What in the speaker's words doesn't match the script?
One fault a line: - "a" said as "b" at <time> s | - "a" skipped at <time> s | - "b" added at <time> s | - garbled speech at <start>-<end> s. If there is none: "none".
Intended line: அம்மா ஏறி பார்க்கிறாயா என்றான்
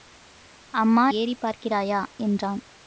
none